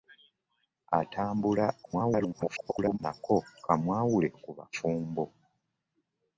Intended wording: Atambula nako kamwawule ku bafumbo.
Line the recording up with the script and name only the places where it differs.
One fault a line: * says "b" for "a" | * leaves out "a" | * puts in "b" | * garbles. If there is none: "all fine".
* garbles